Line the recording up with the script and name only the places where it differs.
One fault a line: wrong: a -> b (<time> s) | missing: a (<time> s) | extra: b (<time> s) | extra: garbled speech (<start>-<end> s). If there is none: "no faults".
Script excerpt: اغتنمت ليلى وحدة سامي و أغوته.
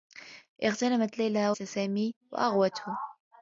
missing: وحدة (1.5 s)